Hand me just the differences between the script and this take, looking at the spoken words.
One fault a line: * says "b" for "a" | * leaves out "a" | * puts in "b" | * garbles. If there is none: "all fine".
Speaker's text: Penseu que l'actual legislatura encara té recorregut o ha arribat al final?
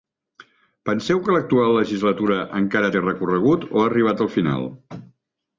all fine